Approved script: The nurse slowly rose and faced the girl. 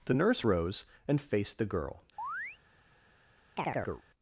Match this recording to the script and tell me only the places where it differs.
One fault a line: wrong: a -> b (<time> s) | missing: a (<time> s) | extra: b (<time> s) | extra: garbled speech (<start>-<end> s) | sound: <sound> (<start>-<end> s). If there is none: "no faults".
missing: slowly (0.5 s)
sound: chirp (2.2-2.6 s)
sound: chirp (3.6-4.0 s)